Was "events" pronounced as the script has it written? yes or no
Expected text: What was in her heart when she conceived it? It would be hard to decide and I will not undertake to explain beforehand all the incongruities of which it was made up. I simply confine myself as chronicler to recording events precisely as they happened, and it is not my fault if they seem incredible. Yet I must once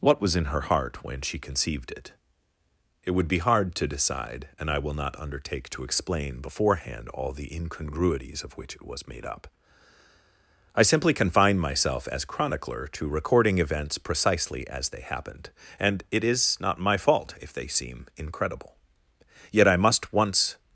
yes